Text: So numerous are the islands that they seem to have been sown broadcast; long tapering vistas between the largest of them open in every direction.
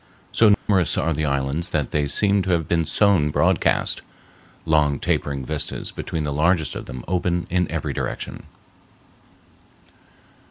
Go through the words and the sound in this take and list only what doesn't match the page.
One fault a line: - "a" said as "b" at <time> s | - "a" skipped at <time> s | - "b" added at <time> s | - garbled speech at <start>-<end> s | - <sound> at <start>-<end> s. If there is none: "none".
- dropout at 0.5-0.7 s